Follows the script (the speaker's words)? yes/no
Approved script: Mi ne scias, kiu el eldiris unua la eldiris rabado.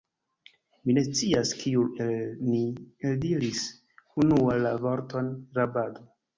no